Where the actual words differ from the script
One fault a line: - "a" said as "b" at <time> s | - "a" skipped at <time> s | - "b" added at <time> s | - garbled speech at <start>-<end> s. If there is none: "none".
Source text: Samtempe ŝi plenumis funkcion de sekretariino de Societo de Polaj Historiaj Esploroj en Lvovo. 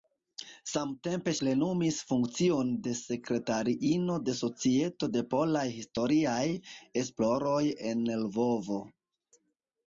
- "ŝi" skipped at 1.3 s